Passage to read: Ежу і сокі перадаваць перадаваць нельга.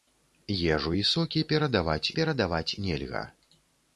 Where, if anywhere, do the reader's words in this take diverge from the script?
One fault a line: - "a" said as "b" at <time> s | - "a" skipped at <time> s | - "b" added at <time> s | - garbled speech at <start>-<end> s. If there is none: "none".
none